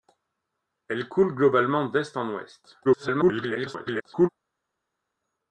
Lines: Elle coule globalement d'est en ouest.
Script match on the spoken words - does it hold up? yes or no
no